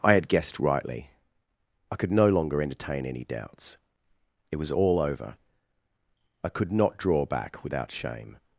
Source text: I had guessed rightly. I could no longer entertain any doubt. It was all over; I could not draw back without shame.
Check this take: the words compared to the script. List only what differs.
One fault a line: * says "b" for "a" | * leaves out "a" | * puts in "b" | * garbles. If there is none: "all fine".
* says "doubts" for "doubt"